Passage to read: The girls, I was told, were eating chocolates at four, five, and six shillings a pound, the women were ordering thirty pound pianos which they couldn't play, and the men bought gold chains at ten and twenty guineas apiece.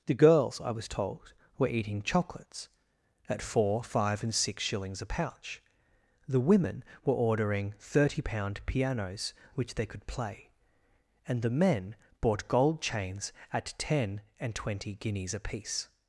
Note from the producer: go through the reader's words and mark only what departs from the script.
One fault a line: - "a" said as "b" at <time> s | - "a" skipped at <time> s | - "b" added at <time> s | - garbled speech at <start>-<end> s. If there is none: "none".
- "pound" said as "pouch" at 5.0 s
- "couldn't" said as "could" at 9.9 s